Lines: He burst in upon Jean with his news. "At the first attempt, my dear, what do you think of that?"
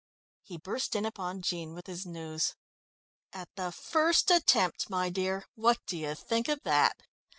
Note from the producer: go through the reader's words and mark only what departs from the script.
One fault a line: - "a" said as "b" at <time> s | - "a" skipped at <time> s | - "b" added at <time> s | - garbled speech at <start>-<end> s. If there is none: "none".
none